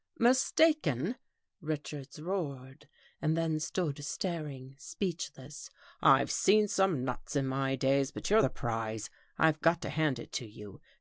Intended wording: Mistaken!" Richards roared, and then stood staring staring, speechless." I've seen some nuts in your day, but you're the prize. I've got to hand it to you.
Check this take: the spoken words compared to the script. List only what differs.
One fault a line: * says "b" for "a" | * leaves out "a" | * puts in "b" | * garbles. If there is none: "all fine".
* leaves out "staring"
* says "my" for "your"